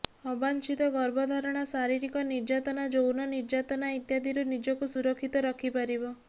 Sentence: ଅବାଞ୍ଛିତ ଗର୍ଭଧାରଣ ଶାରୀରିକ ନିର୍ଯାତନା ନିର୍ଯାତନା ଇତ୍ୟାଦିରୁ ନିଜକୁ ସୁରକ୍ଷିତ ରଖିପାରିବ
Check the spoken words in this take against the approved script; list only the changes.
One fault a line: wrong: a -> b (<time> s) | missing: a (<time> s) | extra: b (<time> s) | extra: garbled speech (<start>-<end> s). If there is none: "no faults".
extra: ଯୌନ (2.9 s)